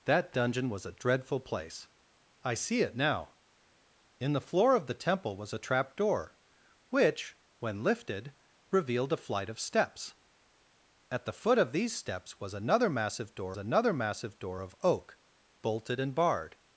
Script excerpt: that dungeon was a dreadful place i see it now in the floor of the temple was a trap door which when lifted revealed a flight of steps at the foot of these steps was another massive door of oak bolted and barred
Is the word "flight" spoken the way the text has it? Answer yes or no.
yes